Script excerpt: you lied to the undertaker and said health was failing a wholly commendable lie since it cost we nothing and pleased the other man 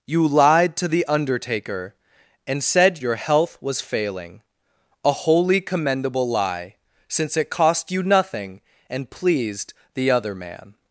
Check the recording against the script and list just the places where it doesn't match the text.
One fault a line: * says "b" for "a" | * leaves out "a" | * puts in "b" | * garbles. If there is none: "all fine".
* puts in "your"
* says "you" for "we"